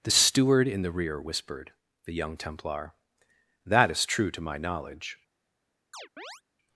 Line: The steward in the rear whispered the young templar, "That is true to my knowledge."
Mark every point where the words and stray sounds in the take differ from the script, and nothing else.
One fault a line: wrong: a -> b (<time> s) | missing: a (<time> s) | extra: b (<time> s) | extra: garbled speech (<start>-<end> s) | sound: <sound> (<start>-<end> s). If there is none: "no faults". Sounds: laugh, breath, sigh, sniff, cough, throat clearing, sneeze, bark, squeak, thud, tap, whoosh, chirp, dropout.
sound: chirp (5.9-6.4 s)